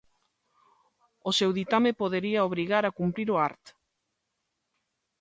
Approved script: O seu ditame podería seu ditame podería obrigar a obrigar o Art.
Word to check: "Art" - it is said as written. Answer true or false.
true